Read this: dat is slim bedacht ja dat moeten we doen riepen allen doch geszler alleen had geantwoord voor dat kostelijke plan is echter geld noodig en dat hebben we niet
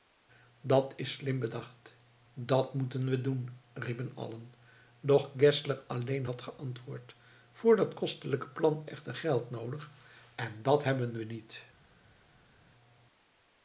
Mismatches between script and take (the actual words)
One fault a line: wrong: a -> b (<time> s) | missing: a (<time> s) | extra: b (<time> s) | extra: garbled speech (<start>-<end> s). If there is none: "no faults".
missing: ja (2.0 s)
missing: is (8.8 s)